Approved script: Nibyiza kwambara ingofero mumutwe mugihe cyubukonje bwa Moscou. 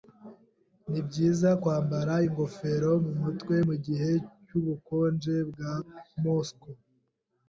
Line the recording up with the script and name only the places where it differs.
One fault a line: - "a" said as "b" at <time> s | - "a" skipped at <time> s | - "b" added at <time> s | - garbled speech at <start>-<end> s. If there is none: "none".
none